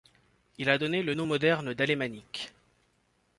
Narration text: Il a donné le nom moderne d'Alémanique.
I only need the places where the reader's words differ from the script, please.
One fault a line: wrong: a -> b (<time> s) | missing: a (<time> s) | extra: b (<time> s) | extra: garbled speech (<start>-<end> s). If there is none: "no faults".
no faults